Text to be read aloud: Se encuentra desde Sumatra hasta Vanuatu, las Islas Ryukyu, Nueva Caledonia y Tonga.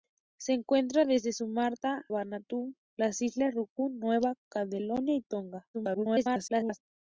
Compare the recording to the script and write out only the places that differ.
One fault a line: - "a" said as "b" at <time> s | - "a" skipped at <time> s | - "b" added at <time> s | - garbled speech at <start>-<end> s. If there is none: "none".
- "hasta" skipped at 2.0 s
- garbled speech at 5.7-6.8 s